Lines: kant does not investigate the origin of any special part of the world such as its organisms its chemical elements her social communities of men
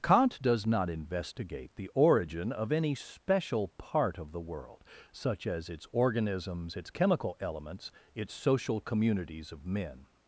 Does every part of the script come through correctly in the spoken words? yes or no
no